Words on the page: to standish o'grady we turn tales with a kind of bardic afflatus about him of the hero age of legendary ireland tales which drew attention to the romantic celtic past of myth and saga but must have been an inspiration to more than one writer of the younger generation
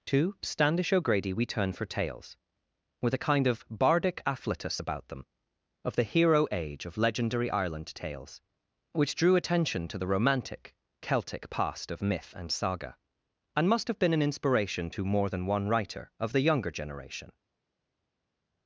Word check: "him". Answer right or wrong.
wrong